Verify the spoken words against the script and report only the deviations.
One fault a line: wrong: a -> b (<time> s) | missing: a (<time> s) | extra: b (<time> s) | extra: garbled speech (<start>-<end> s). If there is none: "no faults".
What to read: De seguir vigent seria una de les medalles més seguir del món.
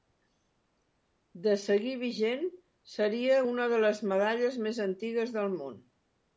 wrong: seguir -> antigues (4.9 s)